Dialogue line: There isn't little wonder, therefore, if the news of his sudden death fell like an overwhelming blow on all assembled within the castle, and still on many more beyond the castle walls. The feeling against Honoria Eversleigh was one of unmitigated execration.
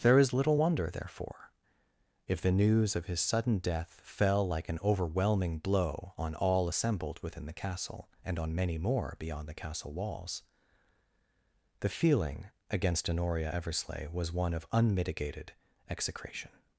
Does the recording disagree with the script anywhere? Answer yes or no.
yes